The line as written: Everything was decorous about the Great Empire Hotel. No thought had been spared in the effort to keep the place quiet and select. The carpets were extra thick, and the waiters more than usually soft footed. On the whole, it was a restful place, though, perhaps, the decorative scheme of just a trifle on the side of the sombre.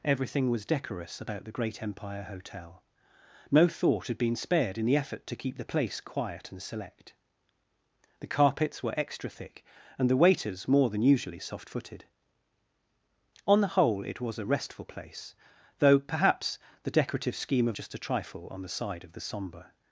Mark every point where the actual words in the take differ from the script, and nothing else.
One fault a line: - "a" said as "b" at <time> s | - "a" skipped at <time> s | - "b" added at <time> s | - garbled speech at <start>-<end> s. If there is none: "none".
none